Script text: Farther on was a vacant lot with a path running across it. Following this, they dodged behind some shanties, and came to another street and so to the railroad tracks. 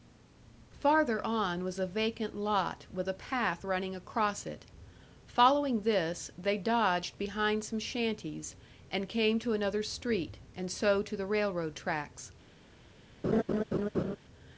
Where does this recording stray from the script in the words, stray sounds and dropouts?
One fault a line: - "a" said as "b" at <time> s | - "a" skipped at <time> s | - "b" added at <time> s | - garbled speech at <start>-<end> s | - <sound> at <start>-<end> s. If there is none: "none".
- laugh at 13.2-14.2 s